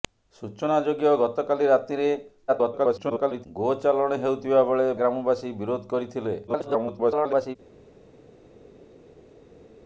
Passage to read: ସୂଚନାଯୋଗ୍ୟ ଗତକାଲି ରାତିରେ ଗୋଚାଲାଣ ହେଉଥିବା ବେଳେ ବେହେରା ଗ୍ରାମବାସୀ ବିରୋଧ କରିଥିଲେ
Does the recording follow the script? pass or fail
fail